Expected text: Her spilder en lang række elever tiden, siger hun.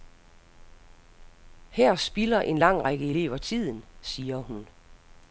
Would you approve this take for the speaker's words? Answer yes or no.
yes